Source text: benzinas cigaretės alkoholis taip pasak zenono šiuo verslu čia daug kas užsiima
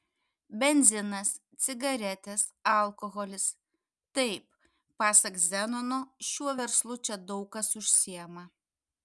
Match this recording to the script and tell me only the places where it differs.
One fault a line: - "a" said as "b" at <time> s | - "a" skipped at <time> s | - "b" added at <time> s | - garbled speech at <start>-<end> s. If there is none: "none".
none